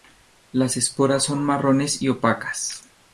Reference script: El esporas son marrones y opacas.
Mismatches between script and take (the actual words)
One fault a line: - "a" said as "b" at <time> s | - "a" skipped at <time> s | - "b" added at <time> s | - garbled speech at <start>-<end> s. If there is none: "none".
- "El" said as "Las" at 0.5 s